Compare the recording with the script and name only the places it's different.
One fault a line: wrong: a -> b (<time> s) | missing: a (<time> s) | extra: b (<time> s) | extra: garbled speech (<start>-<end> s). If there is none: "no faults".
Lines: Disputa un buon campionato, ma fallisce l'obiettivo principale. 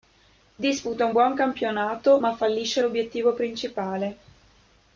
no faults